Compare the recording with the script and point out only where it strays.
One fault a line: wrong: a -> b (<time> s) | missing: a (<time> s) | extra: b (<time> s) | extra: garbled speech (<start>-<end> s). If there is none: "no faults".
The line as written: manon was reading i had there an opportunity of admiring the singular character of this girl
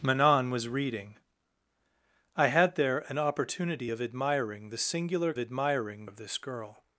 wrong: character -> admiring (5.4 s)